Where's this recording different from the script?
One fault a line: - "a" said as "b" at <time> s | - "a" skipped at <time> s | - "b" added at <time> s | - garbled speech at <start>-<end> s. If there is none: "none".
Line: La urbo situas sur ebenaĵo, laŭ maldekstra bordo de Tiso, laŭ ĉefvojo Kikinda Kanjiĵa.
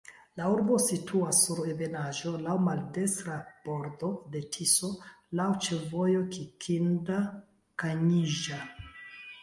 none